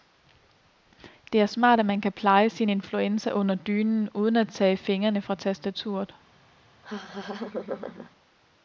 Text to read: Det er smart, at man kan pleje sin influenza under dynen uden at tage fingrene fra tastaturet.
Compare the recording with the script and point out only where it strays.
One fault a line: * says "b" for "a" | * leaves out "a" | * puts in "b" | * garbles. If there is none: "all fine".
all fine